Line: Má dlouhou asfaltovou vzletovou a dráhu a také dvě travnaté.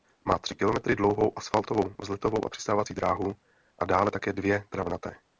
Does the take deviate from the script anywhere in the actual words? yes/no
yes